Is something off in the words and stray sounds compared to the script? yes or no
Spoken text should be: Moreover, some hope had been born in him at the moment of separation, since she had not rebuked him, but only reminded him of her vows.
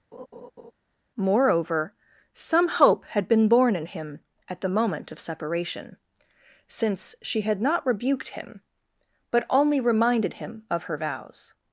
yes